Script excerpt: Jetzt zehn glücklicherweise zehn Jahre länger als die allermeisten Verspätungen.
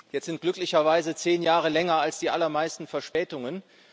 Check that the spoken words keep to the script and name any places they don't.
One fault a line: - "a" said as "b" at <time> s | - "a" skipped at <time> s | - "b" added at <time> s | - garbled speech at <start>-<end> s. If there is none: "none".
- "zehn" said as "sind" at 0.2 s